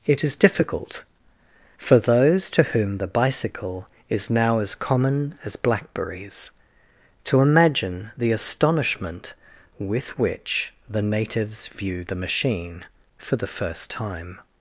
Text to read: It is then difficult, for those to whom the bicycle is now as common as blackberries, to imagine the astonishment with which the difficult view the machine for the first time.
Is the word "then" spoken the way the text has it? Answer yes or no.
no